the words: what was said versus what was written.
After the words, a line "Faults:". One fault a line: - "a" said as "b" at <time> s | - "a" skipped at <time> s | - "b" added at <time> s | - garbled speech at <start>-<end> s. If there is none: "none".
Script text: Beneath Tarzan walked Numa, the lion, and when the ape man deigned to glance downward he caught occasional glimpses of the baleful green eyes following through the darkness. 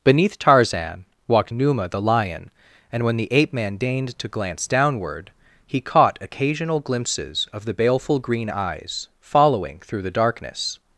Beneath Tarzan walked Numa, the lion, and when the ape man deigned to glance downward he caught occasional glimpses of the baleful green eyes following through the darkness.
Faults:
none